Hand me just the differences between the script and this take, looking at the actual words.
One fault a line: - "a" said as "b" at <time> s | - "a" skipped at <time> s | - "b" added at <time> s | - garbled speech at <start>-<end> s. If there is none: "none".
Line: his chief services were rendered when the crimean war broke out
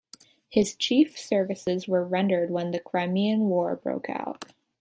none